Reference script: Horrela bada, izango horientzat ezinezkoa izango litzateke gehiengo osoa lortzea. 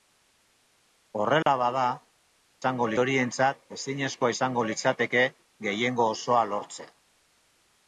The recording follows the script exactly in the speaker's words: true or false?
true